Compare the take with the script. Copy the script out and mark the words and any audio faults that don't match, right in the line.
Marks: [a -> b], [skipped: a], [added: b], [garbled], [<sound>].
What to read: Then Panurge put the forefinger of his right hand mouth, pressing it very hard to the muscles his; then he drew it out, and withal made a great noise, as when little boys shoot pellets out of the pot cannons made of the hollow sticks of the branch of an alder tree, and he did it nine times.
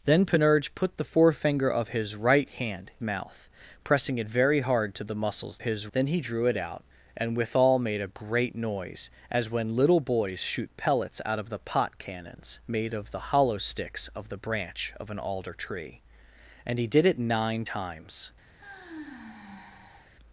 Then Panurge put the forefinger of his right hand mouth, pressing it very hard to the muscles his; then he drew it out, and withal made a great noise, as when little boys shoot pellets out of the pot cannons made of the hollow sticks of the branch of an alder tree, and he did it nine times. [sigh]